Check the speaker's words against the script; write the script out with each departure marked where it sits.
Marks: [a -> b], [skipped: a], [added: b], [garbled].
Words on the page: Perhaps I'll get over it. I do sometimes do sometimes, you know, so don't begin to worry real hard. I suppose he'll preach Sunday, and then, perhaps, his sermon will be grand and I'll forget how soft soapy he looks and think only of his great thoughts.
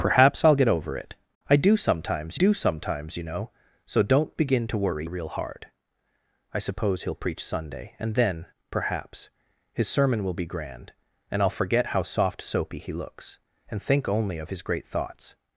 Perhaps I'll get over it. I do sometimes do sometimes, you know, so don't begin to worry real hard. I suppose he'll preach Sunday, and then, perhaps, his sermon will be grand and I'll forget how soft soapy he looks and think only of his great thoughts.